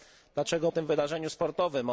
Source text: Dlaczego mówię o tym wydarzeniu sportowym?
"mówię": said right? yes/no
no